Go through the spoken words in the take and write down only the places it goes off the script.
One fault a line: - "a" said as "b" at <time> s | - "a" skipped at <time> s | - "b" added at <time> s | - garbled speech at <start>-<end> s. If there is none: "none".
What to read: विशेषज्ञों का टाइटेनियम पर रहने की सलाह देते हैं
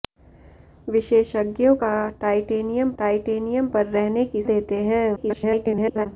- "टाइटेनियम" added at 3.0 s
- "सलाह" skipped at 4.4 s
- garbled speech at 5.2-6.1 s